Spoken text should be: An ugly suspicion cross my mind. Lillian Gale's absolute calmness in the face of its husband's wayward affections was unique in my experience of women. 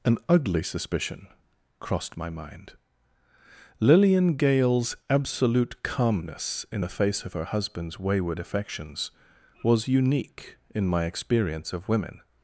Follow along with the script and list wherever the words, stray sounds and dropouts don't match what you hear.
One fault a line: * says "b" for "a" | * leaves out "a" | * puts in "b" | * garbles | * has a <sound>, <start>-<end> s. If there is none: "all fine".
* says "crossed" for "cross"
* says "her" for "its"